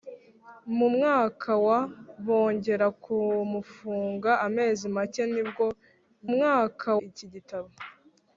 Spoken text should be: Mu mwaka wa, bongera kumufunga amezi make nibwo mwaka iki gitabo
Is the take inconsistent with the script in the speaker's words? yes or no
no